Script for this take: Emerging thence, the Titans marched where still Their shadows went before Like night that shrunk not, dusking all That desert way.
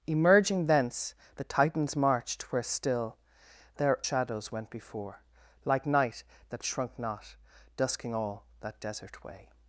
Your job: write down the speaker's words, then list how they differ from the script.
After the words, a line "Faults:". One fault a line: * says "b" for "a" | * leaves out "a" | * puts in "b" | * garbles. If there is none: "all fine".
Emerging thence, the Titans marched where still Their shadows went before Like night that shrunk not, dusking all That desert way.
Faults:
all fine